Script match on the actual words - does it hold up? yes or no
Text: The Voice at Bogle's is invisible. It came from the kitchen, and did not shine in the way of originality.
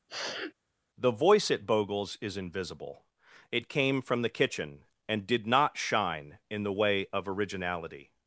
yes